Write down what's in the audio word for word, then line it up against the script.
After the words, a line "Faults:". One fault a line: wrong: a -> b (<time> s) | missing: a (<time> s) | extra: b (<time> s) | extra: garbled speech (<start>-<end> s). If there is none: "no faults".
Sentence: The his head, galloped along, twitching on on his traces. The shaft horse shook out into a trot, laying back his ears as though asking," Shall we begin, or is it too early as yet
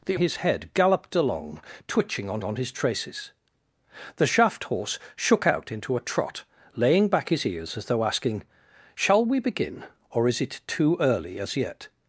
The his head, galloped along, twitching on on his traces. The shaft horse shook out into a trot, laying back his ears as though asking," Shall we begin, or is it too early as yet
Faults:
no faults